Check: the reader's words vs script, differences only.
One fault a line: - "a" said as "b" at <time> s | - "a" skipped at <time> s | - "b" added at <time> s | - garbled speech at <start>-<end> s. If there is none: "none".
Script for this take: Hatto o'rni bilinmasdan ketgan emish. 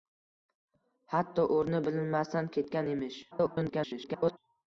- garbled speech at 3.3-4.4 s